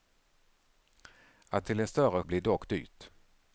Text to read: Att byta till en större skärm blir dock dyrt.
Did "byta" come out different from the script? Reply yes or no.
yes